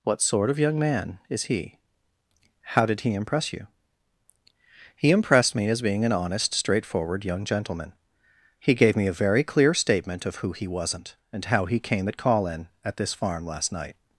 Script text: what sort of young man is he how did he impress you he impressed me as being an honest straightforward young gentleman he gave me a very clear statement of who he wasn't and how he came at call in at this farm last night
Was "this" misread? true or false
false